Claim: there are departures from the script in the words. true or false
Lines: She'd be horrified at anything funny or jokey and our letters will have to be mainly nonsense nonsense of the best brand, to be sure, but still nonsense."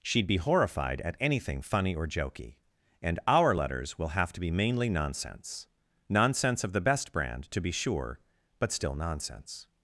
false